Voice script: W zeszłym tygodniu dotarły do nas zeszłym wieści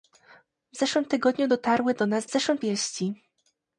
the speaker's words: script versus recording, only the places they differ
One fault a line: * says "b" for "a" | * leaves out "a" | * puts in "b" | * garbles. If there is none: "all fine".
all fine